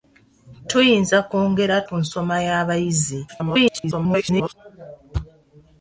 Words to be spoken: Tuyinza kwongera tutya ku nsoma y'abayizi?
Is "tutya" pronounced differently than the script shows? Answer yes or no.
yes